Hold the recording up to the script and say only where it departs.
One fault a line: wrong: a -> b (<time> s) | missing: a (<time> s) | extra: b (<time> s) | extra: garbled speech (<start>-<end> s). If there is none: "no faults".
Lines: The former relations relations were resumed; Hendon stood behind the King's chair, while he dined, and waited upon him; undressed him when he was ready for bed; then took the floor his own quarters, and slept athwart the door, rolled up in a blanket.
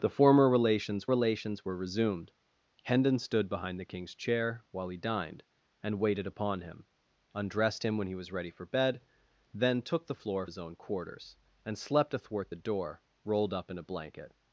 no faults